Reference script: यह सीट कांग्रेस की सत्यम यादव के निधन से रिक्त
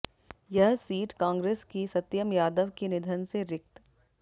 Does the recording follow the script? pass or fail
pass